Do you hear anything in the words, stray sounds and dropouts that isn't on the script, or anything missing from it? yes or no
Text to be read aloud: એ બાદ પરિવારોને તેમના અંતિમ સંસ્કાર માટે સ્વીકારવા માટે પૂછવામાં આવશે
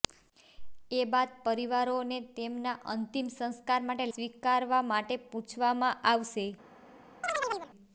yes